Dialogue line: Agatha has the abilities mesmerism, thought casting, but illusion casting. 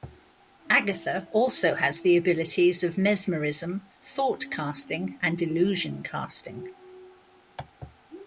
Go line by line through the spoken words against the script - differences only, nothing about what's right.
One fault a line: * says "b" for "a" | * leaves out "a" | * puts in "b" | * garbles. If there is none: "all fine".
* puts in "also"
* puts in "of"
* says "and" for "but"